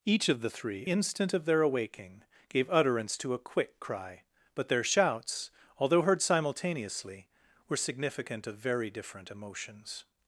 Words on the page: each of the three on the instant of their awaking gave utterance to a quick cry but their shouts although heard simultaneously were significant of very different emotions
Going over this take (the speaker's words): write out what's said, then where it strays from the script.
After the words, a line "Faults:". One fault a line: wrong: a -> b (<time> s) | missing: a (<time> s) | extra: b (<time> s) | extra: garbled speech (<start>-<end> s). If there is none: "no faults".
each of the three instant of their awaking gave utterance to a quick cry but their shouts although heard simultaneously were significant of very different emotions
Faults:
missing: on the (0.9 s)